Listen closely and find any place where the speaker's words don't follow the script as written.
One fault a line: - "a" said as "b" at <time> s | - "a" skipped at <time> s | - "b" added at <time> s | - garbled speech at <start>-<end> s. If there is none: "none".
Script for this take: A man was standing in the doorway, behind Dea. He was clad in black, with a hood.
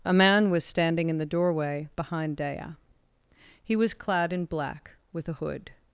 none